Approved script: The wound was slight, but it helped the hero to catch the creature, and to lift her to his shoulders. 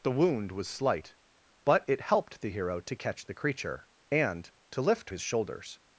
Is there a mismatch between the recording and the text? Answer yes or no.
yes